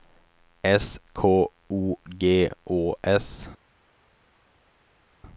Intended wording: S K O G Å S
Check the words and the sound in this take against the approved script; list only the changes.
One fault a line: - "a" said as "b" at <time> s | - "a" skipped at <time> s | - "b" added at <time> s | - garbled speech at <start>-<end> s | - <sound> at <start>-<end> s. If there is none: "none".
none